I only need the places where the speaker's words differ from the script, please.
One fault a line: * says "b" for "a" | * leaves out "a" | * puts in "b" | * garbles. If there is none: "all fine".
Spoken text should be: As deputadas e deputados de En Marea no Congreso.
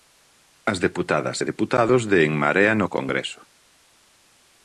all fine